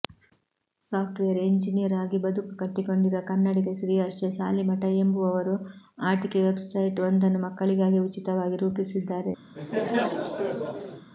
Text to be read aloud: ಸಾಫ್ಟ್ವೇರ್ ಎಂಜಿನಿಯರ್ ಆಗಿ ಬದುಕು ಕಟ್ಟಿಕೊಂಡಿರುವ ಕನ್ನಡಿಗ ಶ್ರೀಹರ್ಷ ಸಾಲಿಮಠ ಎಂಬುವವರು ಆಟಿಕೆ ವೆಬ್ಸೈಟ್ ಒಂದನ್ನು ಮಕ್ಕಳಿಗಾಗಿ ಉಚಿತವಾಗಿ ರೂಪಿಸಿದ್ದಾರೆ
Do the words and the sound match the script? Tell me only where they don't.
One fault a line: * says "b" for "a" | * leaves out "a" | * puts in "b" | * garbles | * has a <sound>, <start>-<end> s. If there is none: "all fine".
* has a laugh, 9.5-11.1 s